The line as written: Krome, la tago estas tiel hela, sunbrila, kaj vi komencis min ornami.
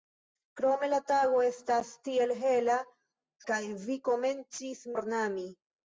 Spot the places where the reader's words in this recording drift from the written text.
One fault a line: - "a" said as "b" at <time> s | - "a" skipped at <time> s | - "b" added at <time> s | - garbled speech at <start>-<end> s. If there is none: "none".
- "sunbrila" skipped at 2.8 s
- "min" skipped at 4.9 s